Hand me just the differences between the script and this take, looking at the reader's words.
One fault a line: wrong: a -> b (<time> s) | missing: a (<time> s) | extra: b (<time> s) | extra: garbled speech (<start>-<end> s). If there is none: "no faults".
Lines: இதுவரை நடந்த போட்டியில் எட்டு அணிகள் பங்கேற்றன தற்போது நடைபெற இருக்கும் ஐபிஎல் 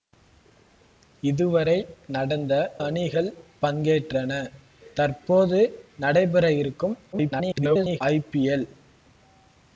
missing: போட்டியில் எட்டு (2.5 s)
extra: garbled speech (7.1-8.0 s)